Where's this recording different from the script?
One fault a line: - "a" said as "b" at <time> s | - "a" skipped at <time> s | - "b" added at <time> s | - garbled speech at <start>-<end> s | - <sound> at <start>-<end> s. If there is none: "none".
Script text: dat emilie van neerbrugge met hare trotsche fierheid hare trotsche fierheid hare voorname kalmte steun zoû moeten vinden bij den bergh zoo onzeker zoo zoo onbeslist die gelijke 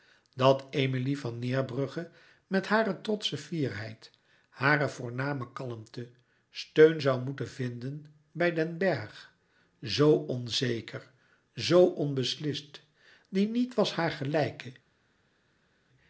- "trotsche fierheid hare" skipped at 4.9 s
- "zoo" skipped at 11.9 s
- "niet was haar" added at 13.4 s